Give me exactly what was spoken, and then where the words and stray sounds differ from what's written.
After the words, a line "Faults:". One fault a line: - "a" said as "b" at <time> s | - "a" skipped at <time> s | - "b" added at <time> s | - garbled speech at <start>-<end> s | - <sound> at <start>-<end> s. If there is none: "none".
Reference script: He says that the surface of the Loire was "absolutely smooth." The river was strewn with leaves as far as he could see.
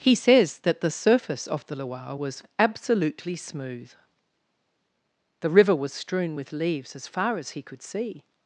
He says that the surface of the Loire was "absolutely smooth." The river was strewn with leaves as far as he could see.
Faults:
none